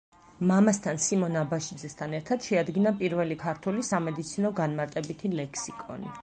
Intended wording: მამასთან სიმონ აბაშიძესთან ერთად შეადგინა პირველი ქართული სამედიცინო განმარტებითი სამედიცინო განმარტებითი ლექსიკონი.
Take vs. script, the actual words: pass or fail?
fail